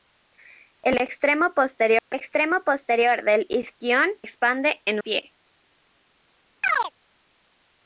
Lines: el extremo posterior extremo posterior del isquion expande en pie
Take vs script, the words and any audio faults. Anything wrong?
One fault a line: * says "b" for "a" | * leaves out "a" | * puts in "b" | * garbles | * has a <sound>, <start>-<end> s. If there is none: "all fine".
* has a dropout, 2.0-2.1 s
* has a chirp, 6.6-6.9 s